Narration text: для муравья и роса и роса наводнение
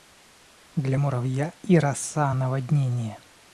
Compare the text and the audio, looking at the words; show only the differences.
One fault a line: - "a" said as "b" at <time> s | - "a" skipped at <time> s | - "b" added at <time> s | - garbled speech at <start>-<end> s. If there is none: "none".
- "и роса" skipped at 2.3 s